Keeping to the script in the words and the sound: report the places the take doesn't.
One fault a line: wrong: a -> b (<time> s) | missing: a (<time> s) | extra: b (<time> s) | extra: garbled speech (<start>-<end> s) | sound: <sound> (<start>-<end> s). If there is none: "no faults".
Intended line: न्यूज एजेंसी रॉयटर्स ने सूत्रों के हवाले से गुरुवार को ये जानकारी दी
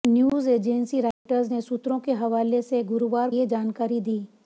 sound: dropout (1.1-1.3 s)
missing: को (3.3 s)